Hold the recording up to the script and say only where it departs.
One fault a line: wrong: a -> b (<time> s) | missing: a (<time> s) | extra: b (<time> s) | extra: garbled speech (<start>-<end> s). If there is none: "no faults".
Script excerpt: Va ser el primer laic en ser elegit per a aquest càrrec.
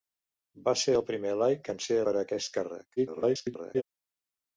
missing: elegit (2.0 s)
extra: garbled speech (3.0-3.8 s)